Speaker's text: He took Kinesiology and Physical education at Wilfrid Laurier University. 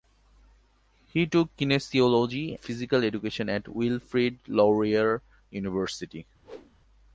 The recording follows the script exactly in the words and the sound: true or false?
false